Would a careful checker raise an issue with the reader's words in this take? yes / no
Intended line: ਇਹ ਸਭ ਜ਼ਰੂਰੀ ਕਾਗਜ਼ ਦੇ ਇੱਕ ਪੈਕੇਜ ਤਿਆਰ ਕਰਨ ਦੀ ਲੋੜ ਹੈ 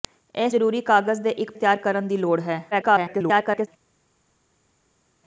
yes